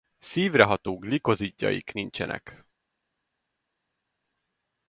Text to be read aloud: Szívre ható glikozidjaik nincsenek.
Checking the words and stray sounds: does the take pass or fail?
pass